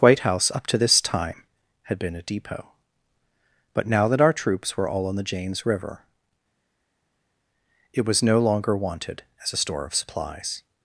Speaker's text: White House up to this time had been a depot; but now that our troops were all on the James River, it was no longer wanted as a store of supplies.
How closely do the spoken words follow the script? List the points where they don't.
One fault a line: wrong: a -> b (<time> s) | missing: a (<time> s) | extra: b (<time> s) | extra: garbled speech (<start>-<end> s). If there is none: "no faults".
no faults